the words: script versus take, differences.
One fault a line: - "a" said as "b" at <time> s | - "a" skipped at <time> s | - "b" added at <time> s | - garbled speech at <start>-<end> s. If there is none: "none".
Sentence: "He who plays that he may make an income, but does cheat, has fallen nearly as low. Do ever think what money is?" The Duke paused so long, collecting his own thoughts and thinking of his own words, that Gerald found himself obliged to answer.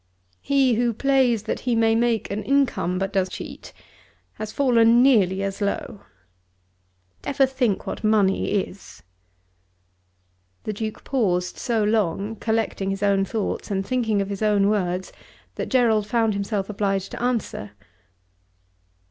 none